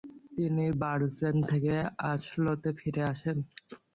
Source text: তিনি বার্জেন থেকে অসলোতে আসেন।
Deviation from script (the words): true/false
true